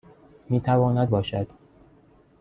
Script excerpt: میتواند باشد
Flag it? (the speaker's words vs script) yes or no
no